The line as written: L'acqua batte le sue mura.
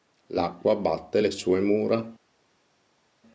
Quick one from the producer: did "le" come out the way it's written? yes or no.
yes